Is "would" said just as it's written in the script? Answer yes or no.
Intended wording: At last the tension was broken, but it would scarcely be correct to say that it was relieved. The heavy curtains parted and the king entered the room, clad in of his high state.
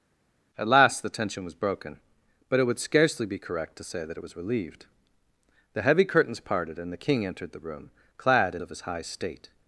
yes